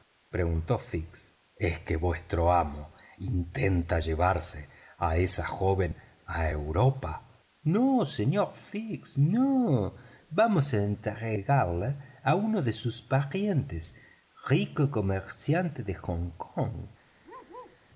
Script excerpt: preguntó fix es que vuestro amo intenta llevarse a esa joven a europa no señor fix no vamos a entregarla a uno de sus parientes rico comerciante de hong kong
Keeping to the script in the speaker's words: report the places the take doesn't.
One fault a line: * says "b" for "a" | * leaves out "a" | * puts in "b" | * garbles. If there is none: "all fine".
all fine